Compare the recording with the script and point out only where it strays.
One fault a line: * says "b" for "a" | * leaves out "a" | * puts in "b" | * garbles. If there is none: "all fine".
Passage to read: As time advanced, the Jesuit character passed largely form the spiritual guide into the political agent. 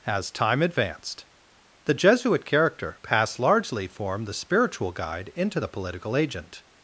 all fine